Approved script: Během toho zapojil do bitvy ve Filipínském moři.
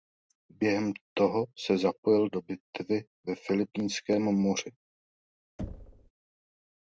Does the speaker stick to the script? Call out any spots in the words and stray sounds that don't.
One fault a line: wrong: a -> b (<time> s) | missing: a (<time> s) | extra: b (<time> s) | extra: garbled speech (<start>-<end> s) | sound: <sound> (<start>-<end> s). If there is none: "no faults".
extra: se (1.7 s)
sound: thud (5.6-6.1 s)